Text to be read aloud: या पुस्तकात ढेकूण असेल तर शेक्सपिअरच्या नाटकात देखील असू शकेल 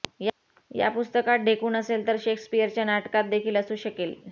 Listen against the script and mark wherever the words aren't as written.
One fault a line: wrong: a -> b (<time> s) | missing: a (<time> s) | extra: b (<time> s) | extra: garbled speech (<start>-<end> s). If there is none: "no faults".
no faults